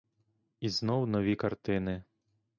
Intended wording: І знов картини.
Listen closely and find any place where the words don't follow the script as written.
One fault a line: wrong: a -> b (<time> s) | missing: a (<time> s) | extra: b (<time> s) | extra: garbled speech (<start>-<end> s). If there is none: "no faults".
extra: нові (1.1 s)